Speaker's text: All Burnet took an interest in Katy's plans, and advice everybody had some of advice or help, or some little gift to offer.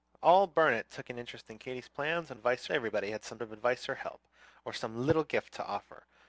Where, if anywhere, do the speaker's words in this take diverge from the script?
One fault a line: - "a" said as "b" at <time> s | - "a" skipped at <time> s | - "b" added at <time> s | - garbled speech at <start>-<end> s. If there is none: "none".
none